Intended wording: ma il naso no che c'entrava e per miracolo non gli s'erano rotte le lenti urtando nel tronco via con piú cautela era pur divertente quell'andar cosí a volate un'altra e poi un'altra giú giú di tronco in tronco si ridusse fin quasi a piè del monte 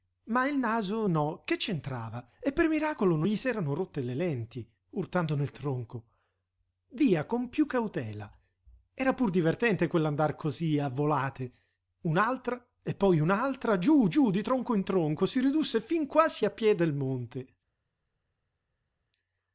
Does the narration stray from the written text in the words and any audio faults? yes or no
no